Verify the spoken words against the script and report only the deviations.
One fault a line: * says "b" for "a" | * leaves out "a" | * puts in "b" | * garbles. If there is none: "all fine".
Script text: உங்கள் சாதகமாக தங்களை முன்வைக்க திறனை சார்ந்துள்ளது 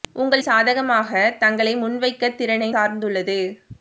all fine